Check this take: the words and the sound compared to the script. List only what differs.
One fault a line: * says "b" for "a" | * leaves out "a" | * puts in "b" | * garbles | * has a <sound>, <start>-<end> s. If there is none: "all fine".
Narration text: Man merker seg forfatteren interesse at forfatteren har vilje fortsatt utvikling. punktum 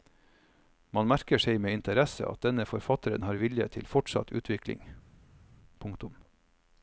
* says "med" for "forfatteren"
* puts in "denne"
* puts in "til"